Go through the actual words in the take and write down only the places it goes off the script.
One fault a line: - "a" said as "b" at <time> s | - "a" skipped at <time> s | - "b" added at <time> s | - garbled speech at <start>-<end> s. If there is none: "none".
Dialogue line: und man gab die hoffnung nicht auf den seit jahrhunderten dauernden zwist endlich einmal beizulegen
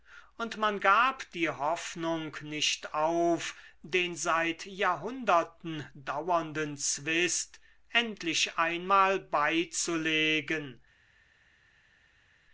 none